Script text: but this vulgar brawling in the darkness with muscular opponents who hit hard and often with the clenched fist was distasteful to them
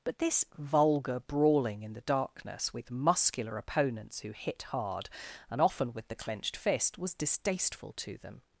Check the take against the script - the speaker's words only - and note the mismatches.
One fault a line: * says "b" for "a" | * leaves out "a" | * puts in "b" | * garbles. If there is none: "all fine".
all fine